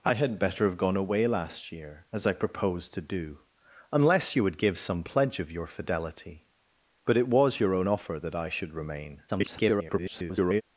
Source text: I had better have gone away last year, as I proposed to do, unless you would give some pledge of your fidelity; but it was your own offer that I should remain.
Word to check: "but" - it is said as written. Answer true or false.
true